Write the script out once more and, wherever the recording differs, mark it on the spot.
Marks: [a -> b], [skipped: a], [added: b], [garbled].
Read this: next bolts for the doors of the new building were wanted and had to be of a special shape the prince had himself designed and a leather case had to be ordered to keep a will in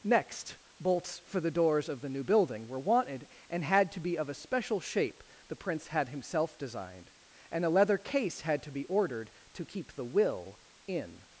next bolts for the doors of the new building were wanted and had to be of a special shape the prince had himself designed and a leather case had to be ordered to keep [a -> the] will in